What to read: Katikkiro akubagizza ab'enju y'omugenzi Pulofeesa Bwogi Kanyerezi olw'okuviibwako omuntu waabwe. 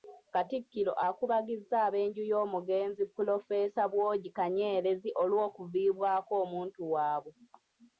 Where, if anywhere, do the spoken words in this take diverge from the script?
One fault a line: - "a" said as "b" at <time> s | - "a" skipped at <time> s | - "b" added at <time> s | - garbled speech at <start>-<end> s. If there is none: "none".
none